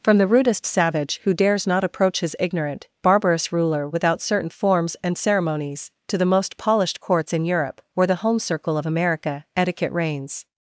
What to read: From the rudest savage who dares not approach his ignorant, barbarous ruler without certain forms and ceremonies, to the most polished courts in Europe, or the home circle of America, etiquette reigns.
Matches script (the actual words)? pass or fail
pass